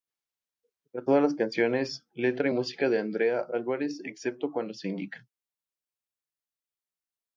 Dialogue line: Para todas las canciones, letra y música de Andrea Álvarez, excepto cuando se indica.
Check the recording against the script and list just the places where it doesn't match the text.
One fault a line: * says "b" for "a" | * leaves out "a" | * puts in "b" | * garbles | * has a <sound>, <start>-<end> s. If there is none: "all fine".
all fine